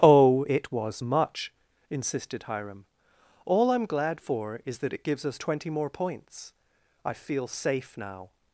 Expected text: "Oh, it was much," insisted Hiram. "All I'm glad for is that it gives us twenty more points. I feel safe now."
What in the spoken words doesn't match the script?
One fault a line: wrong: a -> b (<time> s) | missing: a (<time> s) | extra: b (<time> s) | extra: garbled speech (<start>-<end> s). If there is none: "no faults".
no faults